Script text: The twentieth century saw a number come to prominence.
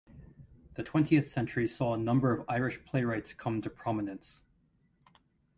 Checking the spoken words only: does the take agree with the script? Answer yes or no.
no